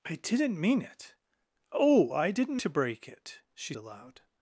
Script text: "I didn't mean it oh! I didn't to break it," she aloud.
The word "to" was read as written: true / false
true